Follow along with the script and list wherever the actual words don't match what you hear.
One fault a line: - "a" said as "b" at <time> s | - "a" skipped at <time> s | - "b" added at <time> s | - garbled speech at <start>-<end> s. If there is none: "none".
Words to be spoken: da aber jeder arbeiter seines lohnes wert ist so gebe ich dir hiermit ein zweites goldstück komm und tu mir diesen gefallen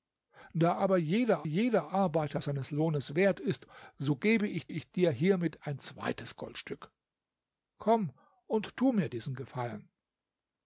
- "jeder" added at 1.4 s
- "ich" added at 4.7 s